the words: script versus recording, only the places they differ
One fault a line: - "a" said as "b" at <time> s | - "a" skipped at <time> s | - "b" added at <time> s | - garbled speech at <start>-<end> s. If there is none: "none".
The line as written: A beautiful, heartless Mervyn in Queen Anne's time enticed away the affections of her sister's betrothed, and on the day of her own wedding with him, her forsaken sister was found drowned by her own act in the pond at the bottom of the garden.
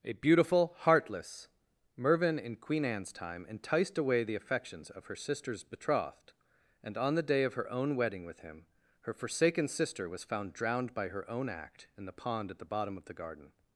none